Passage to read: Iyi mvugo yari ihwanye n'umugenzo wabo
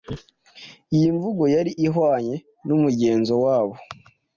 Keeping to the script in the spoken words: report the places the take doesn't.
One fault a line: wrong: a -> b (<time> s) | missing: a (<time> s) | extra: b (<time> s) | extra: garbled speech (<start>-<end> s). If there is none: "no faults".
no faults